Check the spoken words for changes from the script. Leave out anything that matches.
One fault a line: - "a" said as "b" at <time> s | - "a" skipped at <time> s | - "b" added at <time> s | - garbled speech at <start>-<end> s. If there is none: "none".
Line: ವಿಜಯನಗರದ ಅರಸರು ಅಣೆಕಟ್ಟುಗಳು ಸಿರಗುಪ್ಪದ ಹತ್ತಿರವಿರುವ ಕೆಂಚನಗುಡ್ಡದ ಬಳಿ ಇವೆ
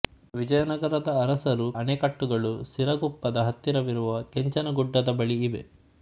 none